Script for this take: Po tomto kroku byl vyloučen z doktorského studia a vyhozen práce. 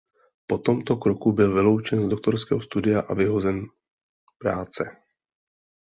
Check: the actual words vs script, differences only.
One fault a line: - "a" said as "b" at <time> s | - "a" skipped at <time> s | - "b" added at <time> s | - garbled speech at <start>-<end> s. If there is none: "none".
none